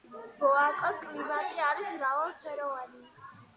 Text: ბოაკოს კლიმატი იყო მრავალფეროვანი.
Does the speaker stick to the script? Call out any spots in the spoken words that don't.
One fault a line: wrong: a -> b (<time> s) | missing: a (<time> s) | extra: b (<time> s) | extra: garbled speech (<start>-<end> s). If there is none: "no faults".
wrong: იყო -> არის (1.7 s)